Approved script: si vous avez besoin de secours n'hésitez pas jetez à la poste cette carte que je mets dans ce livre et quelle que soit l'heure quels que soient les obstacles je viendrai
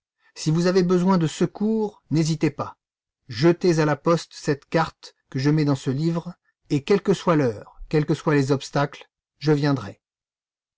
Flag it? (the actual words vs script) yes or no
no